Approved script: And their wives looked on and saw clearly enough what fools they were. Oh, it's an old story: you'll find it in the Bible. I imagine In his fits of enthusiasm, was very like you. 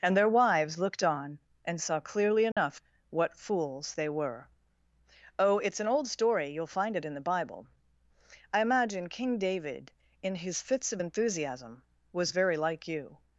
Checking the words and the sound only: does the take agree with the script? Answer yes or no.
no